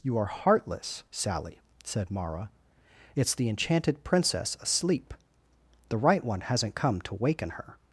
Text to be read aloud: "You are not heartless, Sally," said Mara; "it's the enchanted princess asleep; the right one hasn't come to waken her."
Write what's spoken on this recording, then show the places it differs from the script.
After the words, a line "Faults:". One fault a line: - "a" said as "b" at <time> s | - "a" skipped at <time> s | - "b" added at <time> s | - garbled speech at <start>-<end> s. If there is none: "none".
"You are heartless, Sally," said Mara; "it's the enchanted princess asleep; the right one hasn't come to waken her."
Faults:
- "not" skipped at 0.2 s